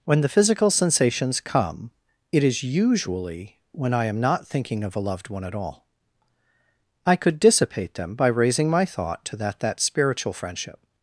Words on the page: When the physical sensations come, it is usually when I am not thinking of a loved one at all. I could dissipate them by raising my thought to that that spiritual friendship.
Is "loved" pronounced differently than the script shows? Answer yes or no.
no